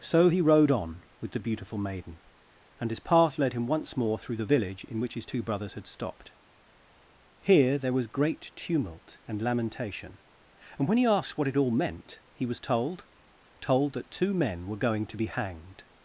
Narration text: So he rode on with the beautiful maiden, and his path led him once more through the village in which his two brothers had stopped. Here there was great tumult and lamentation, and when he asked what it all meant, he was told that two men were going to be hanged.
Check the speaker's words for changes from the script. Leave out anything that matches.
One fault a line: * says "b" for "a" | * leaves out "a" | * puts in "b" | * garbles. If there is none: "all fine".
* puts in "told"